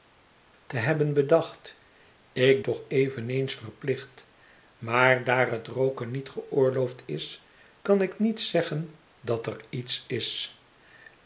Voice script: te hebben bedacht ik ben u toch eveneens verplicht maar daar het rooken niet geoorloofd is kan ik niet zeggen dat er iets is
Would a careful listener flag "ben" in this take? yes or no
yes